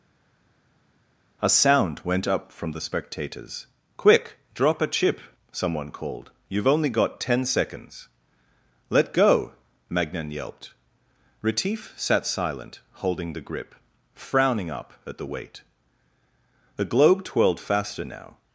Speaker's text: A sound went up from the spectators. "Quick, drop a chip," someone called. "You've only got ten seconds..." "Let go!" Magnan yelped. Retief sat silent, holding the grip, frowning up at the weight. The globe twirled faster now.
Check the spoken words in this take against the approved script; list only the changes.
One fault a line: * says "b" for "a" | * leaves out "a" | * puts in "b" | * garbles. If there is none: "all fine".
all fine